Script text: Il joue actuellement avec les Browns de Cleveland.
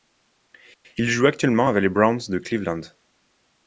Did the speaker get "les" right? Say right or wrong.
right